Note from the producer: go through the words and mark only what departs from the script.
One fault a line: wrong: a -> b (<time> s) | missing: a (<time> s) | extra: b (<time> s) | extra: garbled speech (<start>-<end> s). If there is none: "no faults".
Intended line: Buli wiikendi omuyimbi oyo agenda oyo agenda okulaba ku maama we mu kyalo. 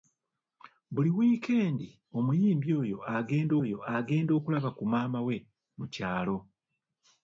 no faults